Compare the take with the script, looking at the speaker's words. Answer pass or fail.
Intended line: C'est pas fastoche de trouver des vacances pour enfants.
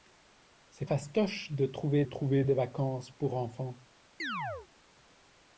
fail